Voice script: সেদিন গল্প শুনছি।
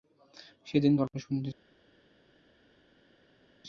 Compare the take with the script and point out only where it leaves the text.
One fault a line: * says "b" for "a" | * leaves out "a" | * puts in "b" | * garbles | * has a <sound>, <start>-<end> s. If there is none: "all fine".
all fine